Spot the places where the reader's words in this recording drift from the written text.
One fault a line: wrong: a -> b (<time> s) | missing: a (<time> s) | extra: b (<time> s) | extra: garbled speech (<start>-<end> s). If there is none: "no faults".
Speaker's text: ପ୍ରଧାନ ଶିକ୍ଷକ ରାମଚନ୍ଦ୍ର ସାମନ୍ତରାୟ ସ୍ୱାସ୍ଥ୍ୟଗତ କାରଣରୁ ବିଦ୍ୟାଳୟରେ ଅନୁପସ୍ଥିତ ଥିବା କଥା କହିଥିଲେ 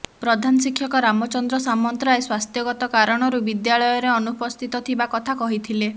no faults